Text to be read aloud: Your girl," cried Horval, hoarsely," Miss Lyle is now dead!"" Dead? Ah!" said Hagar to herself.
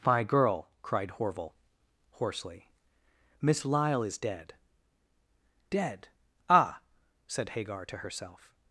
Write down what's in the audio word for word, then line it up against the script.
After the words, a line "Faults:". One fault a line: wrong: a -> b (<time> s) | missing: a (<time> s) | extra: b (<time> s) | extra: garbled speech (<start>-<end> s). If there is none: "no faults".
My girl," cried Horval, hoarsely," Miss Lyle is dead!"" Dead? Ah!" said Hagar to herself.
Faults:
wrong: Your -> My (0.1 s)
missing: now (4.2 s)